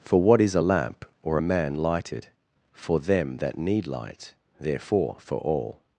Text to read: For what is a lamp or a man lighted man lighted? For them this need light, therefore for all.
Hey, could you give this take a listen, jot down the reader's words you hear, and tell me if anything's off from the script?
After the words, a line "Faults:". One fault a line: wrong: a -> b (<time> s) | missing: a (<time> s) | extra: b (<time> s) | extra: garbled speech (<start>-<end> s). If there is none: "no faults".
For what is a lamp or a man lighted? For them that need light, therefore for all.
Faults:
missing: man lighted (2.3 s)
wrong: this -> that (3.4 s)